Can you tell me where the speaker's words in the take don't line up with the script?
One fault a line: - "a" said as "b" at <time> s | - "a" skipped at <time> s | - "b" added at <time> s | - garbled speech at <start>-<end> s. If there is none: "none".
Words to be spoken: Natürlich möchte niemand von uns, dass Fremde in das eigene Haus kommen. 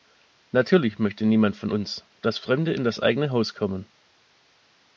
none